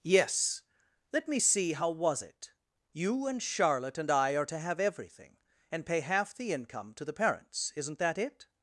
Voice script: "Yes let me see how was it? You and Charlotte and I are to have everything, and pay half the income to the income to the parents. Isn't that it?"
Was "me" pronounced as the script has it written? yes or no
yes